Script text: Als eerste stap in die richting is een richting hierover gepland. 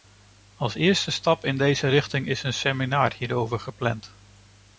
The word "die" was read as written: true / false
false